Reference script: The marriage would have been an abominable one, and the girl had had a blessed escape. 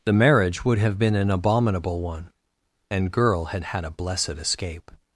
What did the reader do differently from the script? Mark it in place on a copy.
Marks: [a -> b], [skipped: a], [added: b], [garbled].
The marriage would have been an abominable one, and [skipped: the] girl had had a blessed escape.